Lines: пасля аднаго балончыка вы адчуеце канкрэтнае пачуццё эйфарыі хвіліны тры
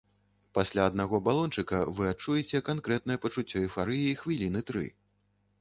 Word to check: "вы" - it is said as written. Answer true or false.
true